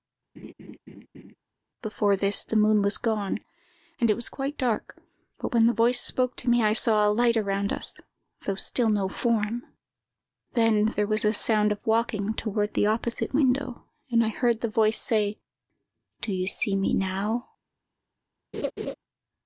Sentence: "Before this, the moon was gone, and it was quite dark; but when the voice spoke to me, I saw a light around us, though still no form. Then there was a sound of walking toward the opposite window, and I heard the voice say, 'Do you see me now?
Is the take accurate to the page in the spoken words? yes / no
yes